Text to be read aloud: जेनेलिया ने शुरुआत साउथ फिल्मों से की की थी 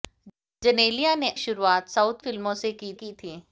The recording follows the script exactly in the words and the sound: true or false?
true